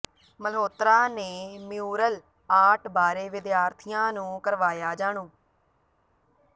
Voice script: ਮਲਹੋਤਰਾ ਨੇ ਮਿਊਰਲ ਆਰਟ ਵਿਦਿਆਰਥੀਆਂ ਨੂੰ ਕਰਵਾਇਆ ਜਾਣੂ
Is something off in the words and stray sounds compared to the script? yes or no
yes